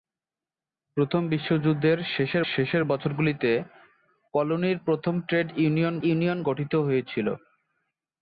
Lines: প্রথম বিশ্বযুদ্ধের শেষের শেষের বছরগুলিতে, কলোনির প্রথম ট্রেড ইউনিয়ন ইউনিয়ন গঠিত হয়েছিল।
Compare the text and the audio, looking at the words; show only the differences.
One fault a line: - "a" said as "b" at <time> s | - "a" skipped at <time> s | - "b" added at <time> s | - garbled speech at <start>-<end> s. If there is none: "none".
none